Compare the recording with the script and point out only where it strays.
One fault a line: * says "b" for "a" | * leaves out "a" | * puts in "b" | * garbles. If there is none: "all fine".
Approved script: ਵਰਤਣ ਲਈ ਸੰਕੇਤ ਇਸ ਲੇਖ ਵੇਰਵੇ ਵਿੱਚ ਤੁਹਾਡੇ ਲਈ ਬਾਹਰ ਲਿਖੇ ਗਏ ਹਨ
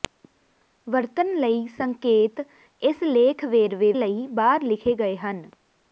* leaves out "ਵਿੱਚ ਤੁਹਾਡੇ"